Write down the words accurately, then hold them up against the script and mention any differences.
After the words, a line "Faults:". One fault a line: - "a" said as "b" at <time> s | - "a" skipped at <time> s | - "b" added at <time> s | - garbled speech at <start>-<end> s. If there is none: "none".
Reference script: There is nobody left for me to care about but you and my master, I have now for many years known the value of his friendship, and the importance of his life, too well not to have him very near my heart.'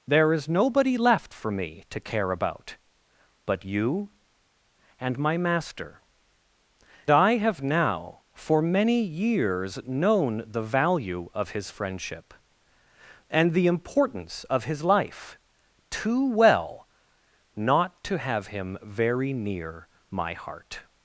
There is nobody left for me to care about but you and my master, I have now for many years known the value of his friendship, and the importance of his life, too well not to have him very near my heart.'
Faults:
none